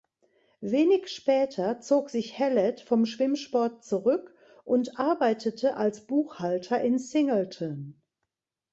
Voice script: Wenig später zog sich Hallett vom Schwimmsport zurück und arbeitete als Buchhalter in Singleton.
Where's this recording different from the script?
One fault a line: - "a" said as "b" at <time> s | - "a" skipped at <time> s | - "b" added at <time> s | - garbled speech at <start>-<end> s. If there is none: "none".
none